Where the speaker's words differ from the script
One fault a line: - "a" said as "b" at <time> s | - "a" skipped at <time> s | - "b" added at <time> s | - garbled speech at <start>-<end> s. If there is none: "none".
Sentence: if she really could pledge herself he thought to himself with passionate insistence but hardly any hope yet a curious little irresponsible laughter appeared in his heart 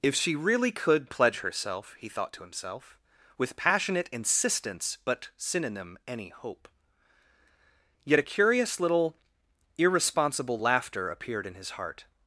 - "hardly" said as "synonym" at 5.4 s